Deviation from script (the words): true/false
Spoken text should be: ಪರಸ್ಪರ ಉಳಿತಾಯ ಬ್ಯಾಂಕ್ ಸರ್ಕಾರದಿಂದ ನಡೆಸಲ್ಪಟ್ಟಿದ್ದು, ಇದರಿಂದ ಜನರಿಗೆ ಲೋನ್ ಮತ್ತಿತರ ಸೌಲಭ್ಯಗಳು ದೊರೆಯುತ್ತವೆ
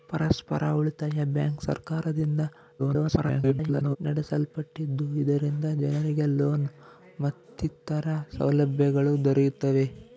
true